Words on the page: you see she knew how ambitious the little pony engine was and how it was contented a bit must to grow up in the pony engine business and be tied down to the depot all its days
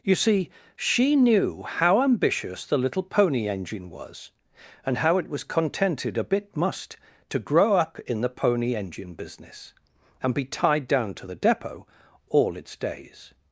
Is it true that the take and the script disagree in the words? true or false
false